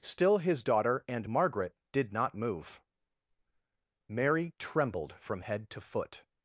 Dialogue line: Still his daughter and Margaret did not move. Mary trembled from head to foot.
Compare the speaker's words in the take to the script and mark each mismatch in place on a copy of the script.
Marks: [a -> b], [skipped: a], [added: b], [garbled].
Still his daughter and Margaret did not move. Mary trembled from head to foot.